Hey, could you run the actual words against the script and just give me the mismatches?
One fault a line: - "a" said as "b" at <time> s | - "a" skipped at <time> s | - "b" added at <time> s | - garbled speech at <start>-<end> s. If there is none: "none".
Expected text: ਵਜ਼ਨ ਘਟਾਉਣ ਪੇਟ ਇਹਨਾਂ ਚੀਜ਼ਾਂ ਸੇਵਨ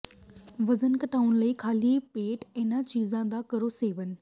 - "ਲਈ ਖਾਲੀ" added at 1.4 s
- "ਦਾ ਕਰੋ" added at 3.3 s